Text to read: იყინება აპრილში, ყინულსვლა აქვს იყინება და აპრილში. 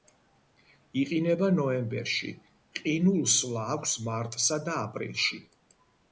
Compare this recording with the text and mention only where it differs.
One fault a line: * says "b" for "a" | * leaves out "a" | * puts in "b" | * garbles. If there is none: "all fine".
* says "ნოემბერში" for "აპრილში"
* says "მარტსა" for "იყინება"